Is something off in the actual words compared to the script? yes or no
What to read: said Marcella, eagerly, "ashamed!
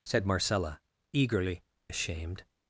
no